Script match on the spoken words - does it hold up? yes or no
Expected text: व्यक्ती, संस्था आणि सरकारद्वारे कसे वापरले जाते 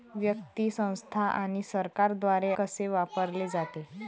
yes